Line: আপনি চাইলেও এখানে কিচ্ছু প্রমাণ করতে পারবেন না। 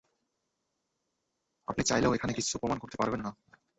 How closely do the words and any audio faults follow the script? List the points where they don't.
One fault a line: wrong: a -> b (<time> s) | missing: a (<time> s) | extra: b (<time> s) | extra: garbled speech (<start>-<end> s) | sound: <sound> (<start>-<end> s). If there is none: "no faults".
no faults